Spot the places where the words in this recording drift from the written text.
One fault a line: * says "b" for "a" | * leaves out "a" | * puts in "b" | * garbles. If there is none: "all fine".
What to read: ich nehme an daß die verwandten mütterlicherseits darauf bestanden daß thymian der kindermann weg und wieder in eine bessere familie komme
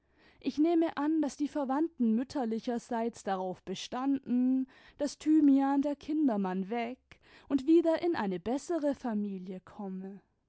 all fine